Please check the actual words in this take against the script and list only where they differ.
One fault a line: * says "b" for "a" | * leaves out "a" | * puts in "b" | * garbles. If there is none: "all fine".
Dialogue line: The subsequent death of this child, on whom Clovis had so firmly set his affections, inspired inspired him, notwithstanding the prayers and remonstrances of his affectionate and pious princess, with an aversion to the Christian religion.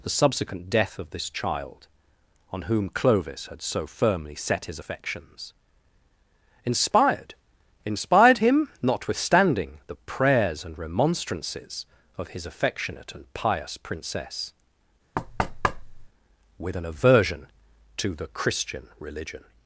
all fine